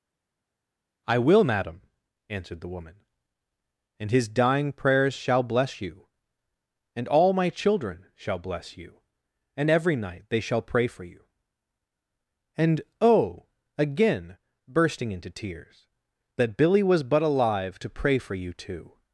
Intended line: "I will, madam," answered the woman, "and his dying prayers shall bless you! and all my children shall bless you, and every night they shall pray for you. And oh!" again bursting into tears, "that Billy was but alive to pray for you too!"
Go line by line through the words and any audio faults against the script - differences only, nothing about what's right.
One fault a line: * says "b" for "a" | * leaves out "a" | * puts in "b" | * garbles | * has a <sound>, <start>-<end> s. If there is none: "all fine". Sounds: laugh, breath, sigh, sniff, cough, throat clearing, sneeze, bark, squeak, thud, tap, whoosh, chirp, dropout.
all fine